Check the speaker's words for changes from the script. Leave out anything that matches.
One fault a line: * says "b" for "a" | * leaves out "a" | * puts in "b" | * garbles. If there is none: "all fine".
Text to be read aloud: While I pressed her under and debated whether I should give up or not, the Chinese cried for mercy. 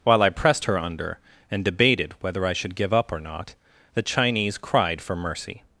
all fine